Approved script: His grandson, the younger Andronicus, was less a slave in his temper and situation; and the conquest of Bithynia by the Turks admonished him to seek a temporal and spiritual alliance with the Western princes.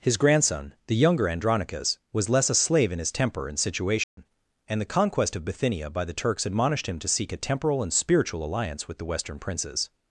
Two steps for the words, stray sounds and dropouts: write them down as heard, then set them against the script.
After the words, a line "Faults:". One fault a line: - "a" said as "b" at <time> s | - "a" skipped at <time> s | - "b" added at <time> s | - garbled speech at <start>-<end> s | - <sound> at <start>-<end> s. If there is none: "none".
His grandson, the younger Andronicus, was less a slave in his temper and situation; and the conquest of Bithynia by the Turks admonished him to seek a temporal and spiritual alliance with the Western princes.
Faults:
- dropout at 4.0-4.2 s